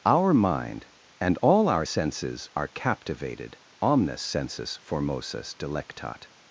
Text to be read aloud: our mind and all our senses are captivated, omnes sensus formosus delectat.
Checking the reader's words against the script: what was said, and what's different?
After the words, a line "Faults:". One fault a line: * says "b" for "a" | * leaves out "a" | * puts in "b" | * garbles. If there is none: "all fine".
our mind and all our senses are captivated, omnes sensus formosus delectat.
Faults:
all fine